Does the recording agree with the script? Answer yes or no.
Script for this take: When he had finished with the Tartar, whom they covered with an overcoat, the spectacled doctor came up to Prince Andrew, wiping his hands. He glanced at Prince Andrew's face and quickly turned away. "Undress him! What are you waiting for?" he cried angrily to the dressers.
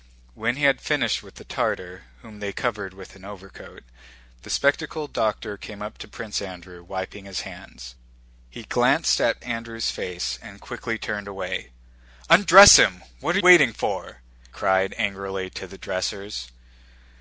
no